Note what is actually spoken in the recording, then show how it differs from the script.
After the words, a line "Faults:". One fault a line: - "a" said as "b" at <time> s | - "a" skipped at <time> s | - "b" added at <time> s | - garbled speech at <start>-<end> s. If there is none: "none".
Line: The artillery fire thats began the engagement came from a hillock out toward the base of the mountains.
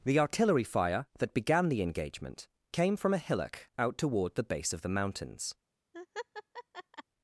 The artillery fire that began the engagement came from a hillock out toward the base of the mountains.
Faults:
- "thats" said as "that" at 1.2 s